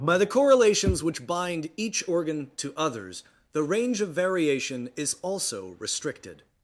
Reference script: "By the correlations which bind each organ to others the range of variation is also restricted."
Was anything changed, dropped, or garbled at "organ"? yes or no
no